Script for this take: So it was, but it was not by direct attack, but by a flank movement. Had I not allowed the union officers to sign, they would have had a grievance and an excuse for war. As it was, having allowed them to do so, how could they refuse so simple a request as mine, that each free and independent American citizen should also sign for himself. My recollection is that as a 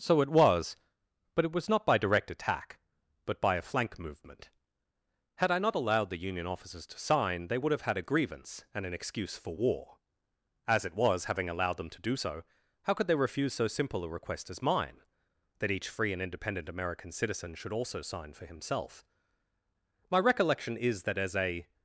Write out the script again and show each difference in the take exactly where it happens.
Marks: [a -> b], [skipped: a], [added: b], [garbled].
So it was, but it was not by direct attack, but by a flank movement. Had I not allowed the union officers to sign, they would have had a grievance and an excuse for war. As it was, having allowed them to do so, how could they refuse so simple a request as mine, that each free and independent American citizen should also sign for himself. My recollection is that as a